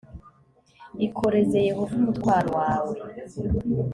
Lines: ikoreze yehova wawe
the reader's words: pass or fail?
fail